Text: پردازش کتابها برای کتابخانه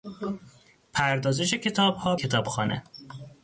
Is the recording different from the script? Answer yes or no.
yes